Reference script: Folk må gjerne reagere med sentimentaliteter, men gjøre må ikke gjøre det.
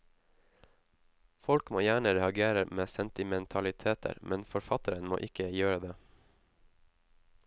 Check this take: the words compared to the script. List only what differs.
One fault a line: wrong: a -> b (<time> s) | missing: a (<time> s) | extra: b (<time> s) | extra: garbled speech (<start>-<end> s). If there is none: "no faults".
wrong: gjøre -> forfatteren (4.5 s)